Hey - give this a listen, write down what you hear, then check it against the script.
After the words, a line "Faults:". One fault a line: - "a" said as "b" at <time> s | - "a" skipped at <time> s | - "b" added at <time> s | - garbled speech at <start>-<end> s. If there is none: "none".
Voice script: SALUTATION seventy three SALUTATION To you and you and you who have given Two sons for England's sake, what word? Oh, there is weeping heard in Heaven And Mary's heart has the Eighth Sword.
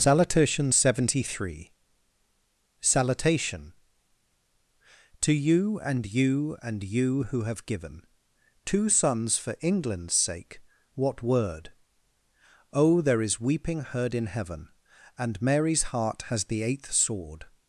SALUTATION seventy three SALUTATION To you and you and you who have given Two sons for England's sake, what word? Oh, there is weeping heard in Heaven And Mary's heart has the Eighth Sword.
Faults:
none